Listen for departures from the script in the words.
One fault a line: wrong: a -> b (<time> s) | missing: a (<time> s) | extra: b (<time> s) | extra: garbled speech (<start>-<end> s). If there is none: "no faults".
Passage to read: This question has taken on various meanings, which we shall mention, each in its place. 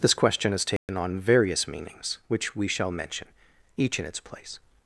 no faults